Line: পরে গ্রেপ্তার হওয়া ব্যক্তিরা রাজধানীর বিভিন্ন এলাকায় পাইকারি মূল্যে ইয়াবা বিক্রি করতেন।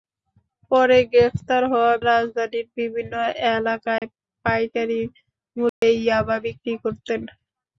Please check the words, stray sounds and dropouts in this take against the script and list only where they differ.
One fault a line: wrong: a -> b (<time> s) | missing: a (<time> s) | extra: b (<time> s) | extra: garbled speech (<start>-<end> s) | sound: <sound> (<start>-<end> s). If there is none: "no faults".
missing: ব্যক্তিরা (1.9 s)
sound: dropout (4.0-4.0 s)
sound: dropout (5.7-5.8 s)